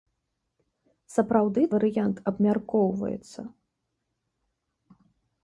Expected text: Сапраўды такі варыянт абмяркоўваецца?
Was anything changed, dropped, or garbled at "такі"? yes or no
yes